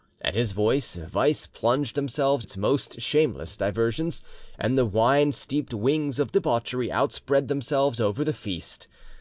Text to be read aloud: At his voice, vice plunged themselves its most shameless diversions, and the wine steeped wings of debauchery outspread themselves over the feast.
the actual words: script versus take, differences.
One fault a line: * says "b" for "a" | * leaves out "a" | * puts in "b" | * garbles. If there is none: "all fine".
all fine